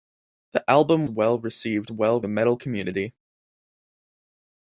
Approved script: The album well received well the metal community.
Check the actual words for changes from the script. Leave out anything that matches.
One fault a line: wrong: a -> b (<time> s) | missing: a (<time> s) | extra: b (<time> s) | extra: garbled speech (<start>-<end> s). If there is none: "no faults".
no faults